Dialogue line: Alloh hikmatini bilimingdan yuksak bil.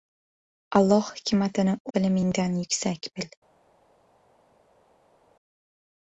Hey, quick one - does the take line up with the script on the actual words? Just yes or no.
yes